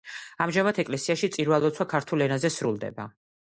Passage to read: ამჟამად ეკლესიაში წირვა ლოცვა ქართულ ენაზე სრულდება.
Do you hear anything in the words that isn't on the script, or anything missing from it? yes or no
no